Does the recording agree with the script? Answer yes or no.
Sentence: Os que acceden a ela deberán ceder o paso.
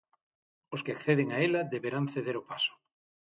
yes